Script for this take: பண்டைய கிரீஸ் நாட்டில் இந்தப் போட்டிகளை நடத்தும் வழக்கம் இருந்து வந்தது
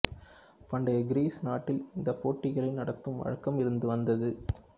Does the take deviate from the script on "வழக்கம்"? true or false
false